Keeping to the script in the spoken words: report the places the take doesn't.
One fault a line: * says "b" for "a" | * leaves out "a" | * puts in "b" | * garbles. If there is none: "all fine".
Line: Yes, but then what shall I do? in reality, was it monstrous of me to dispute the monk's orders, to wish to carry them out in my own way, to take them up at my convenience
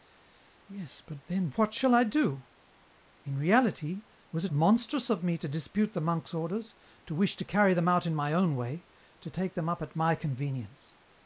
all fine